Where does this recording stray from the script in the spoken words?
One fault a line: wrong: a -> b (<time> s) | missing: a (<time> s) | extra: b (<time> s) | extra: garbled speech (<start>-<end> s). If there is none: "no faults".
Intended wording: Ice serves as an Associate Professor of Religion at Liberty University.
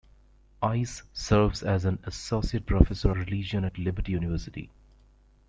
missing: of (3.1 s)